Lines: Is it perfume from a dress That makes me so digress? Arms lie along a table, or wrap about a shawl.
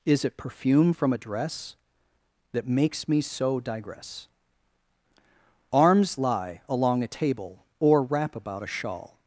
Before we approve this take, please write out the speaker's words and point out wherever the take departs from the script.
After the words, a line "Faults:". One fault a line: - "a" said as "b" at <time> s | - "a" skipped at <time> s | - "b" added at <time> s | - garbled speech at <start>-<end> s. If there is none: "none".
Is it perfume from a dress That makes me so digress? Arms lie along a table, or wrap about a shawl.
Faults:
none